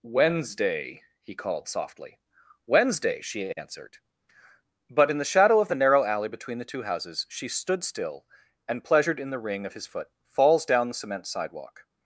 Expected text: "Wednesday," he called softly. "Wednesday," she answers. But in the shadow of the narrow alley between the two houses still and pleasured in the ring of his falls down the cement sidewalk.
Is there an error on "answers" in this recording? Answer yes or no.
yes